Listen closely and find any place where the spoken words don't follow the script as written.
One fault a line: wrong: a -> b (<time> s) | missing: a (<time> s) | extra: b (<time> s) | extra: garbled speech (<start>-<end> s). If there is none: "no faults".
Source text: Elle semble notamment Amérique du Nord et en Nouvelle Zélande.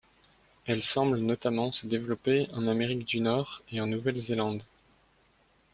extra: se développer en (1.7 s)